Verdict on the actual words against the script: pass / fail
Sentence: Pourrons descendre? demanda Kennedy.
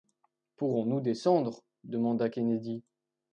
fail